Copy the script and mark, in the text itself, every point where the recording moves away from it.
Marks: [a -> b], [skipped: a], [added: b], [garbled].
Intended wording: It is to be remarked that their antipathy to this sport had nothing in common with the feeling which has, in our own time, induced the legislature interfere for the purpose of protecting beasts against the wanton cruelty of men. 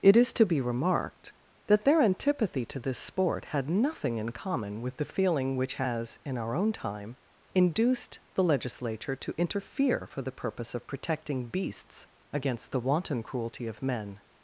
It is to be remarked that their antipathy to this sport had nothing in common with the feeling which has, in our own time, induced the legislature [added: to] interfere for the purpose of protecting beasts against the wanton cruelty of men.